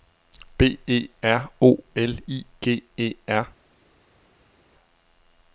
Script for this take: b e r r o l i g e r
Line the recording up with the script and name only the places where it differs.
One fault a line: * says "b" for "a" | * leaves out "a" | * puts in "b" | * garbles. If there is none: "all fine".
* leaves out "r"